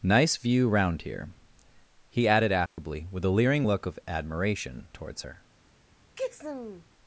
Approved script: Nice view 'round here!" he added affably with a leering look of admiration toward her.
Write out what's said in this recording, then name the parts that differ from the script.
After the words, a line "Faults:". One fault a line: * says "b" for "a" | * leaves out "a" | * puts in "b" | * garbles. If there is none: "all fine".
Nice view 'round here!" he added affably with a leering look of admiration towards her.
Faults:
* says "towards" for "toward"